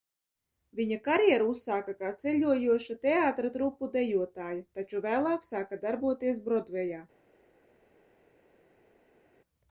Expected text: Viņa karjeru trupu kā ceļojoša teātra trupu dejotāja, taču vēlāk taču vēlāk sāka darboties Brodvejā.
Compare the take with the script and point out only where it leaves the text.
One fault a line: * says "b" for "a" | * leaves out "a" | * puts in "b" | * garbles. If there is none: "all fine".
* says "uzsāka" for "trupu"
* leaves out "taču vēlāk"